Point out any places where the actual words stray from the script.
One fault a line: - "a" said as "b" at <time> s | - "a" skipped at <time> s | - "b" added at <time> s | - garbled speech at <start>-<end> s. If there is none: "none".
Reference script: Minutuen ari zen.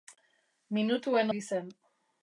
none